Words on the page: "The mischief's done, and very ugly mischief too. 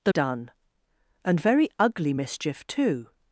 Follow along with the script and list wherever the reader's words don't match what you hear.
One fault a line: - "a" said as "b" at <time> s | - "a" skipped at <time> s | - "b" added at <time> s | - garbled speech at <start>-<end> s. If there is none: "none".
- "mischief's" skipped at 0.1 s